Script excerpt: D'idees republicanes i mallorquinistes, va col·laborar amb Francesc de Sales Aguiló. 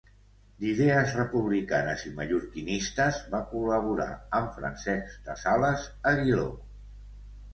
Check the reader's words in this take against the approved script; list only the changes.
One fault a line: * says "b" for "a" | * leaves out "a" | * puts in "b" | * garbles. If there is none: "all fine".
all fine